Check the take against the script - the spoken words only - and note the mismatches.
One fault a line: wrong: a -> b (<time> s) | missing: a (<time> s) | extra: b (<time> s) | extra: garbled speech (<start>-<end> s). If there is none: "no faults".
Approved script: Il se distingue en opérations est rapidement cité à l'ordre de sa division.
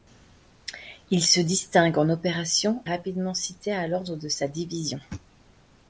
no faults